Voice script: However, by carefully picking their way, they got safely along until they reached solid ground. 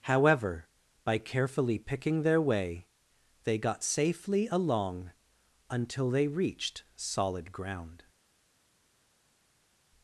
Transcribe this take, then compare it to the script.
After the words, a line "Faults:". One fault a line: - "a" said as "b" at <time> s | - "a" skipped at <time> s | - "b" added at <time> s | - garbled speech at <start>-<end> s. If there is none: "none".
However, by carefully picking their way, they got safely along until they reached solid ground.
Faults:
none